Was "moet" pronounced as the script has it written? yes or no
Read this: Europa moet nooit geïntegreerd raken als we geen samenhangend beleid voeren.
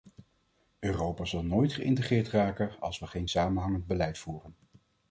no